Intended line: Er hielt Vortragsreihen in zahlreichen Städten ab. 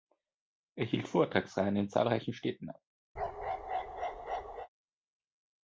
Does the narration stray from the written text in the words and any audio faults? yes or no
yes